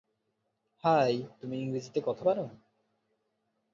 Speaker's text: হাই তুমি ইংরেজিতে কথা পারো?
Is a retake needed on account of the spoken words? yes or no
no